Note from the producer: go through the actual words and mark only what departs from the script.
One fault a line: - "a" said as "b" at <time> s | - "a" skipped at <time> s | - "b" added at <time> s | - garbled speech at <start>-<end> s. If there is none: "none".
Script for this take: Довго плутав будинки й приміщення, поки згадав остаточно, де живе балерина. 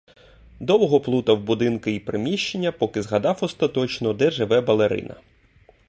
none